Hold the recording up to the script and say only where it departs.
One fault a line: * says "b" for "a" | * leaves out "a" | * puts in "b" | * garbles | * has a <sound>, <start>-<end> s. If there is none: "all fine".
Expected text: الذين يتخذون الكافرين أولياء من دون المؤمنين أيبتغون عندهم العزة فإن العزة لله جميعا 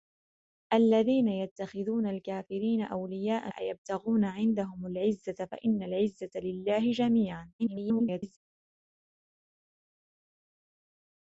* leaves out "من دون المؤمنين"
* garbles